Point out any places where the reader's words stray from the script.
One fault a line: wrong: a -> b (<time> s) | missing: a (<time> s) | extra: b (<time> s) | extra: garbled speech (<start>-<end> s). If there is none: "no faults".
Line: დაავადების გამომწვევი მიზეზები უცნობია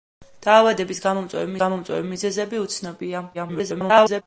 extra: გამომწვევი (1.6 s)
extra: garbled speech (3.3-4.2 s)